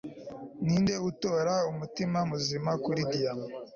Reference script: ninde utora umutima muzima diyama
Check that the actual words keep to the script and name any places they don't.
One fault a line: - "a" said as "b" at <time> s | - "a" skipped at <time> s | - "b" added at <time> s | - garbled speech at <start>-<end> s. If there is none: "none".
- "kuri" added at 2.8 s